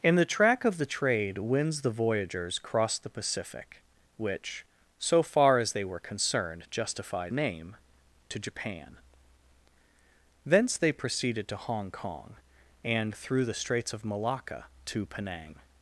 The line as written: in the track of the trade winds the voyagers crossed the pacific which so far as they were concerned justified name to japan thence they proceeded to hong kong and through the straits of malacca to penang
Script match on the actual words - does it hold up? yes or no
yes